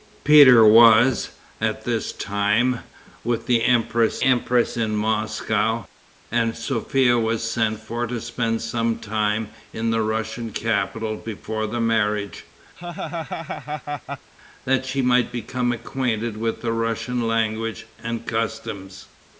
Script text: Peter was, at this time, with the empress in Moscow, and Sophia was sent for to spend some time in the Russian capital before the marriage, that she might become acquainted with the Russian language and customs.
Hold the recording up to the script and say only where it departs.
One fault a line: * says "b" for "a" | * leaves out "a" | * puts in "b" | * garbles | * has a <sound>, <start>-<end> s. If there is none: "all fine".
* puts in "empress"
* has a laugh, 12.8-14.3 s